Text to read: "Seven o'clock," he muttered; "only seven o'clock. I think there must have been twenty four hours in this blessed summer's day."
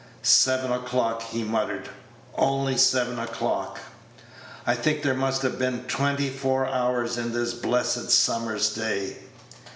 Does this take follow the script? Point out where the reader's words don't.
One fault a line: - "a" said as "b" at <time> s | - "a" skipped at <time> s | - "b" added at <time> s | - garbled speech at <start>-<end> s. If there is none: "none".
none